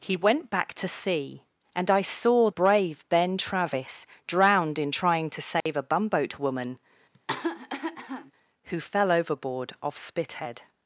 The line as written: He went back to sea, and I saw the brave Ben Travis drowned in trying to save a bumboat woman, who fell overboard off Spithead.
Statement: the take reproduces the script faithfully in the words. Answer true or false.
false